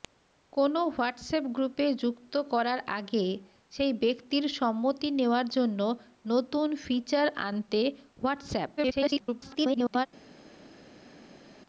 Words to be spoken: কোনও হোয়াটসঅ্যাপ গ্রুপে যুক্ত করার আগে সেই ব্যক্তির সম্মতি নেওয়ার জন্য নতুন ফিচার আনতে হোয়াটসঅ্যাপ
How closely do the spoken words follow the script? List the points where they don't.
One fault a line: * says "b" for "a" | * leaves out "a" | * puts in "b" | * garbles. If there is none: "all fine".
* garbles